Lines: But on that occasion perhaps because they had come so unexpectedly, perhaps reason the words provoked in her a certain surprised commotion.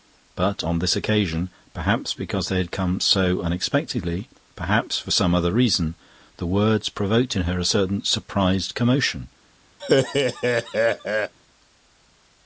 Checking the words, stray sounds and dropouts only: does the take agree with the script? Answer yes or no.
no